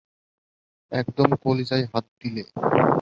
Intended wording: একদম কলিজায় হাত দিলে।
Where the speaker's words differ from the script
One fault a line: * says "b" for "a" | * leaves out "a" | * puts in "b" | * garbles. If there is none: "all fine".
all fine